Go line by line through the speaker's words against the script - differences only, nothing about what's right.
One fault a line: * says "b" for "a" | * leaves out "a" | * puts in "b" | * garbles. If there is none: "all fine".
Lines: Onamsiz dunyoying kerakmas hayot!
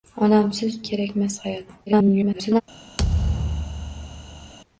* leaves out "dunyoying"
* garbles